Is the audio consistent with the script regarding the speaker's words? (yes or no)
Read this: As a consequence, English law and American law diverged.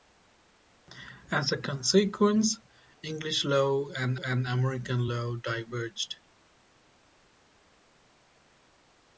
no